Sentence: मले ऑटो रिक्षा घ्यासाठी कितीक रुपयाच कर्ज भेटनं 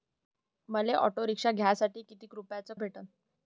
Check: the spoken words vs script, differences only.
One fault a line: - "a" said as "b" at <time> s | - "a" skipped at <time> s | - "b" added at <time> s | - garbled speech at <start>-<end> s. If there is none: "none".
- "कर्ज" skipped at 2.7 s